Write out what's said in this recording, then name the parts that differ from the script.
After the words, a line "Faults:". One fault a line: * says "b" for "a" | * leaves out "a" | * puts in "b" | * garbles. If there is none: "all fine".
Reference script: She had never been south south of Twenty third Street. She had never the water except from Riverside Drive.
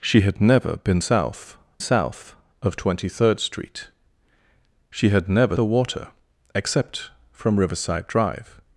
She had never been south south of Twenty third Street. She had never the water except from Riverside Drive.
Faults:
all fine